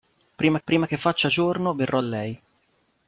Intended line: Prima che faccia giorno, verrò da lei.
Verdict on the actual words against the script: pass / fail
fail